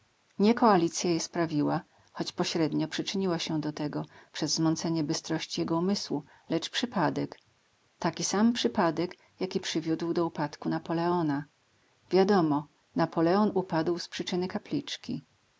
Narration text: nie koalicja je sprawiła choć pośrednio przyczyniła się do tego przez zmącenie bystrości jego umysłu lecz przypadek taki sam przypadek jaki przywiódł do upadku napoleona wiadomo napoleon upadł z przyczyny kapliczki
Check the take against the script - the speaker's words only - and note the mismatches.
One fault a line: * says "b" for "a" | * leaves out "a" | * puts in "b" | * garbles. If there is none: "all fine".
all fine